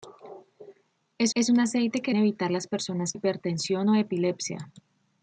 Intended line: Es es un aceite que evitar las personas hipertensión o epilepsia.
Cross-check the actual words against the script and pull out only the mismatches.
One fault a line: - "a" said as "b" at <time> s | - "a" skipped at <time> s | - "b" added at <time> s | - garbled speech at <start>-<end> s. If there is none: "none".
none